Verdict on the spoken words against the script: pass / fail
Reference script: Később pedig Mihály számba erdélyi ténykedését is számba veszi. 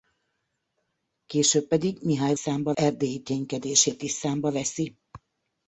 pass